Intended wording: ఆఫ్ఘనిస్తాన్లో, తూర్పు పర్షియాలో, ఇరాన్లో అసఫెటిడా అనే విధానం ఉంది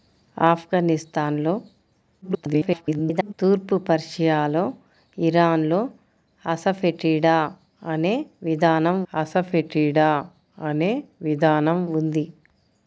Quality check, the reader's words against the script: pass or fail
fail